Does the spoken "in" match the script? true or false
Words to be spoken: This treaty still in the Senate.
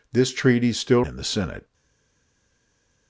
true